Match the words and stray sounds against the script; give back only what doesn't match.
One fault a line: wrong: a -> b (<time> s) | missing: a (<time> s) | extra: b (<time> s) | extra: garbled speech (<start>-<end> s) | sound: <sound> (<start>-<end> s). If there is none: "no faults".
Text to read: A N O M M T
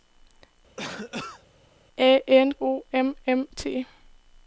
sound: cough (0.8-1.4 s)